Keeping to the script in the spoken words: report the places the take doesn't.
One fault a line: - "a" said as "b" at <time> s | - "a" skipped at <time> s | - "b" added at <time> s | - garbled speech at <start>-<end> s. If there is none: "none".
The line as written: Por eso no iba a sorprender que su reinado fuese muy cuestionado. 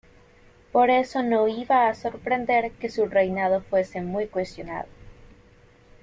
none